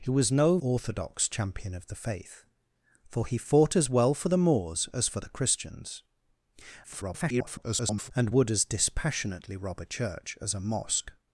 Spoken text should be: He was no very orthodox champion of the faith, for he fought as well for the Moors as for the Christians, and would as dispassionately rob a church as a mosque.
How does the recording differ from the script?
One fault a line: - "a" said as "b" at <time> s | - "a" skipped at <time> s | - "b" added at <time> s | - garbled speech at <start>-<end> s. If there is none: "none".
- "very" skipped at 0.6 s
- garbled speech at 6.8-8.1 s